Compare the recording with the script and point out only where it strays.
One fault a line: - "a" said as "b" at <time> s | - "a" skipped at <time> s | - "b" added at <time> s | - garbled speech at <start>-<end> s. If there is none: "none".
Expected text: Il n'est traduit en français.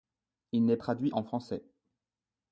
none